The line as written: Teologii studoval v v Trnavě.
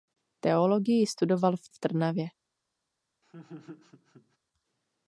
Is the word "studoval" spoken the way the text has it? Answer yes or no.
yes